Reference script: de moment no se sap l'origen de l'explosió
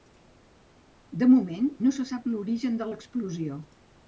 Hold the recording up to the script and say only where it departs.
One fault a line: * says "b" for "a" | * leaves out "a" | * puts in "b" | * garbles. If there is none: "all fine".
all fine